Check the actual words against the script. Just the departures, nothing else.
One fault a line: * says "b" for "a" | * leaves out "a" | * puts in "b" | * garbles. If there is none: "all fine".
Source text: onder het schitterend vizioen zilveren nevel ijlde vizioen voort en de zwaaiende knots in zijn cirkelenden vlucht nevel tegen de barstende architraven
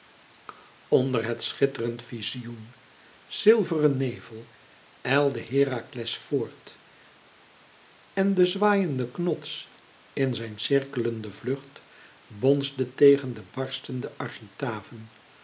* says "herakles" for "vizioen"
* says "bonsde" for "nevel"